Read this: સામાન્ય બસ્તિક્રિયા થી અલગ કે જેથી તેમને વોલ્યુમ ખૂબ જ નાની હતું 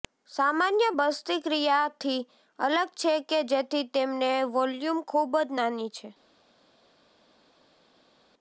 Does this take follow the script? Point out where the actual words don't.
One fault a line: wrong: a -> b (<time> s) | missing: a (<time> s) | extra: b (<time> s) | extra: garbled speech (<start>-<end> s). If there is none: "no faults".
extra: છે (3.0 s)
wrong: હતું -> છે (5.9 s)